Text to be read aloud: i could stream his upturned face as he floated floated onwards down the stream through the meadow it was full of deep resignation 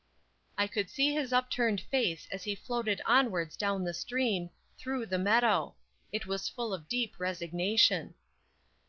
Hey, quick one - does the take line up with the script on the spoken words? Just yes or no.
no